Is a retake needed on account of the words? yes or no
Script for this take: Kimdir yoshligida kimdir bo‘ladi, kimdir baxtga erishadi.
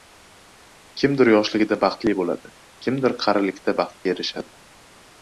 yes